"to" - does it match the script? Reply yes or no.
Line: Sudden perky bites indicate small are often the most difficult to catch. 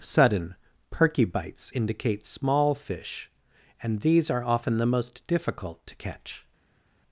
yes